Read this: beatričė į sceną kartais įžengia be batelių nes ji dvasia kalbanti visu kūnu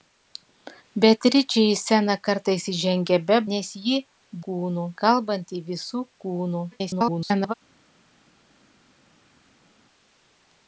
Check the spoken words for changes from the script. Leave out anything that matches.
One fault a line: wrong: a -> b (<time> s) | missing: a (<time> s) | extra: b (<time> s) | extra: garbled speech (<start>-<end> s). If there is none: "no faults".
missing: batelių (3.4 s)
wrong: dvasia -> kūnu (4.5 s)
extra: garbled speech (6.7-7.5 s)